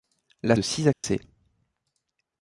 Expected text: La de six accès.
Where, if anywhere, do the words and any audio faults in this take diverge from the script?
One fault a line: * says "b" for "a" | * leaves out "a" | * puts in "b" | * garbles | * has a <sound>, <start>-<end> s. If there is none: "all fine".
* has a dropout, 0.9-1.0 s